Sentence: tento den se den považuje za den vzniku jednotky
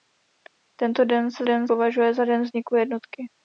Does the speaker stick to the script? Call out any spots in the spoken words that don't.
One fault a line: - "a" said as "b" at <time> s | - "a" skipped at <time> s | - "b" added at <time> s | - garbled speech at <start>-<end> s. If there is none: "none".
none